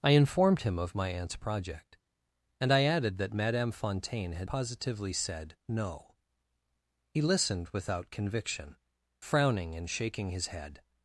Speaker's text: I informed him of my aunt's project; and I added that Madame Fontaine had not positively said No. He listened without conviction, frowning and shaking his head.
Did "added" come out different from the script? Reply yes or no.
no